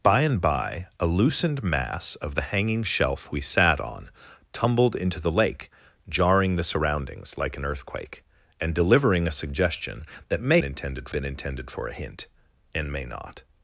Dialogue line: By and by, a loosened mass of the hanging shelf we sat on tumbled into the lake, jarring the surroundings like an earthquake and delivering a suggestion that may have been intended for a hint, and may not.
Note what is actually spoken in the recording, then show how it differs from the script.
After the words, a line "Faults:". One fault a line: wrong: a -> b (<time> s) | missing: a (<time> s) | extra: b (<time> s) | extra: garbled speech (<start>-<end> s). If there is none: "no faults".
By and by, a loosened mass of the hanging shelf we sat on tumbled into the lake, jarring the surroundings like an earthquake and delivering a suggestion that may intended been intended for a hint, and may not.
Faults:
wrong: have -> intended (10.6 s)